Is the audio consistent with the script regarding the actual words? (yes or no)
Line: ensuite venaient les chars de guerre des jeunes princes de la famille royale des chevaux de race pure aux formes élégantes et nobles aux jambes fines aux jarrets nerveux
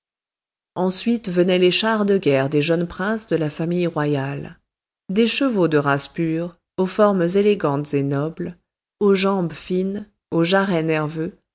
yes